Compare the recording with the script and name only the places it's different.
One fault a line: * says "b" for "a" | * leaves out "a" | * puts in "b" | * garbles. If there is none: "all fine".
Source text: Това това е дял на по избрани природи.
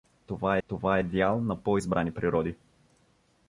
all fine